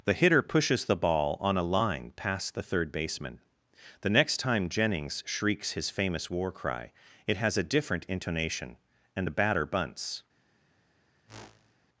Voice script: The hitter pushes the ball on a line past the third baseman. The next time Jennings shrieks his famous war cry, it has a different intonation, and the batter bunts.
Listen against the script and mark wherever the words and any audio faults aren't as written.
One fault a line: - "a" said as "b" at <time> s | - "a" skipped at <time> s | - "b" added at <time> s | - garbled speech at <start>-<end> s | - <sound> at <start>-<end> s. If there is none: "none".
- whoosh at 11.3-11.8 s